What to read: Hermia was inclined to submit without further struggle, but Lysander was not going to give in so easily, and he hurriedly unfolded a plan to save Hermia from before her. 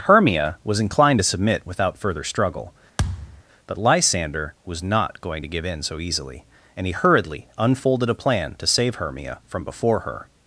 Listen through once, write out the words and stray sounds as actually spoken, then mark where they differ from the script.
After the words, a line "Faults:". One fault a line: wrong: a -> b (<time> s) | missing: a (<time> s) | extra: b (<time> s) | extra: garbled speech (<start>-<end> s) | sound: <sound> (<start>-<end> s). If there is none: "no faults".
Hermia was inclined to submit without further struggle, but Lysander was not going to give in so easily, and he hurriedly unfolded a plan to save Hermia from before her.
Faults:
sound: thud (3.0-3.4 s)